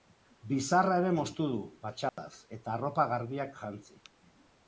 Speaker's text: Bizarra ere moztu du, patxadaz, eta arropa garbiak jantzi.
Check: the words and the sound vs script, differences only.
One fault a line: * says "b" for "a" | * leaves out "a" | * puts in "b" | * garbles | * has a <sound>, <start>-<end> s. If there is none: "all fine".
* has a dropout, 2.1-2.2 s